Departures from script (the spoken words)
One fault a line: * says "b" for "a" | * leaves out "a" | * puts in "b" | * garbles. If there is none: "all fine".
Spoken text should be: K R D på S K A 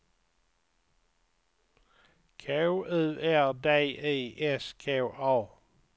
* puts in "U"
* says "I" for "på"